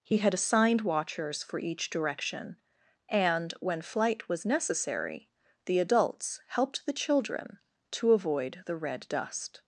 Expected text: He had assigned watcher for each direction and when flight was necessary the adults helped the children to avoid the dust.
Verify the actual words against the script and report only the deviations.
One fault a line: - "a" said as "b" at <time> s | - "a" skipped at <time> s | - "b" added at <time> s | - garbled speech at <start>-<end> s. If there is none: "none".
- "watcher" said as "watchers" at 0.8 s
- "red" added at 8.8 s